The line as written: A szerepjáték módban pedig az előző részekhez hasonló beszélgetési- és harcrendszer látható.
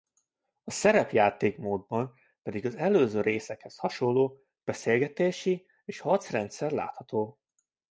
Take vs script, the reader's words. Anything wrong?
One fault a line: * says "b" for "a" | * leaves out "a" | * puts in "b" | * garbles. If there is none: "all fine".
all fine